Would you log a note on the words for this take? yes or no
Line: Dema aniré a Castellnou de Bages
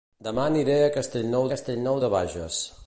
yes